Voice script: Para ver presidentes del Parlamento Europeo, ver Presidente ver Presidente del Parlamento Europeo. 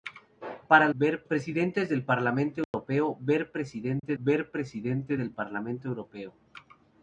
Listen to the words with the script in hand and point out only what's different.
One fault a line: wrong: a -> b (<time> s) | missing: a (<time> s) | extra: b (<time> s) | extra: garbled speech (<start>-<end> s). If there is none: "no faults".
no faults